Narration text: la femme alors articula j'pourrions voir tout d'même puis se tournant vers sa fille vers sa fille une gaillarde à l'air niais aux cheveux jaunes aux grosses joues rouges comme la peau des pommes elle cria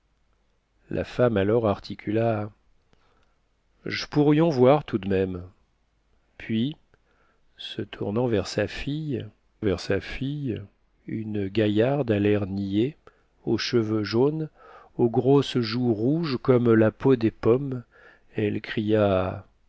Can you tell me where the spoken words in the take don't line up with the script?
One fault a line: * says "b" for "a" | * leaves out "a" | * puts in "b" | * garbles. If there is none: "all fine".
all fine